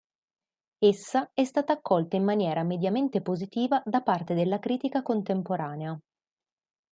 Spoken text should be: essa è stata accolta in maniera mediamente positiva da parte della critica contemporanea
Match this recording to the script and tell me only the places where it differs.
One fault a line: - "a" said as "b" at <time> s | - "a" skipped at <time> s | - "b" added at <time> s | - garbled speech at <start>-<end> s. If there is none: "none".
none